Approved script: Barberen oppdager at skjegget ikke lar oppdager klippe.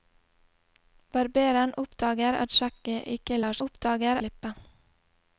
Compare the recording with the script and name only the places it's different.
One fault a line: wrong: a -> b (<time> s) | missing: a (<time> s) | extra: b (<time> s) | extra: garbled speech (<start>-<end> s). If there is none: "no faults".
no faults